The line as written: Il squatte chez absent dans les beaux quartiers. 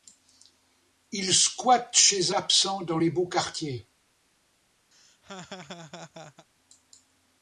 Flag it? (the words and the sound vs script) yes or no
yes